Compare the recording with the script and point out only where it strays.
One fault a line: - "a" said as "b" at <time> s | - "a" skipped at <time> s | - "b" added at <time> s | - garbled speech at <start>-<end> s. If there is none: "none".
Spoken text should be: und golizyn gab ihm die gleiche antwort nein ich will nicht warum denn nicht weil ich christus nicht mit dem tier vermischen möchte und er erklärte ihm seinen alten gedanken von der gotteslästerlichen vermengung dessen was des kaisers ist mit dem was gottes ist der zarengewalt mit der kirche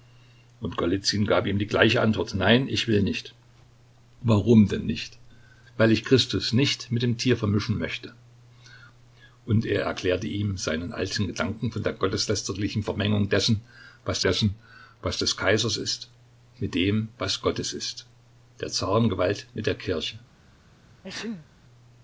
- "dessen was" added at 14.2 s